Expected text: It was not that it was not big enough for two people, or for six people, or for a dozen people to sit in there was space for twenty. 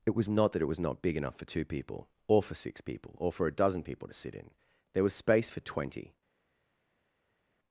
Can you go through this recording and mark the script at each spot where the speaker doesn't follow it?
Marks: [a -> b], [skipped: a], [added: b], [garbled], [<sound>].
It was not that it was not big enough for two people, or for six people, or for a dozen people to sit in there was space for twenty.